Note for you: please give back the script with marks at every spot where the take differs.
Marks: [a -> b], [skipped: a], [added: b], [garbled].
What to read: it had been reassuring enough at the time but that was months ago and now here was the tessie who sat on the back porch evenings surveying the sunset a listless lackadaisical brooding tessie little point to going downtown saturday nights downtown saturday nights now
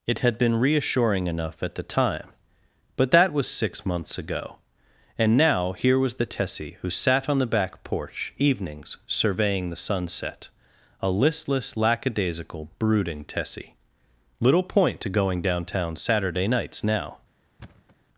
it had been reassuring enough at the time but that was [added: six] months ago and now here was the tessie who sat on the back porch evenings surveying the sunset a listless lackadaisical brooding tessie little point to going downtown saturday nights [skipped: downtown saturday nights] now